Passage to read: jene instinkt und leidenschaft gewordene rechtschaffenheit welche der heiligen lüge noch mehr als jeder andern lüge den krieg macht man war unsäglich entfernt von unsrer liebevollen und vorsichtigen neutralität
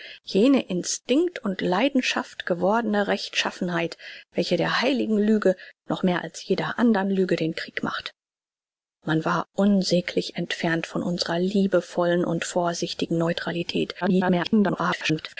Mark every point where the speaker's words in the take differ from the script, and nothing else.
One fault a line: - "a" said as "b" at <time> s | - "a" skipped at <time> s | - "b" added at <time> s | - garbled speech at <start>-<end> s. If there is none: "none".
- garbled speech at 14.0-15.4 s